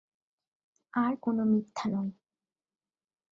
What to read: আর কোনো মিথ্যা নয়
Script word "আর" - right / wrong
right